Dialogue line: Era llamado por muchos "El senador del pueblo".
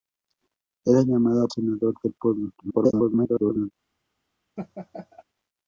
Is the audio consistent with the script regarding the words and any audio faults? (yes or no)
no